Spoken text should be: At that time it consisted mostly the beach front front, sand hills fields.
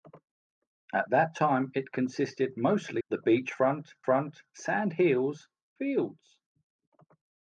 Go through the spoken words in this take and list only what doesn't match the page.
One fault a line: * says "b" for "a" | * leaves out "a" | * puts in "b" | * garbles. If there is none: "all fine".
all fine